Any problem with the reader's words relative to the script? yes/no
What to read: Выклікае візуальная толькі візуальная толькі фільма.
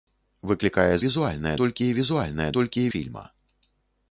no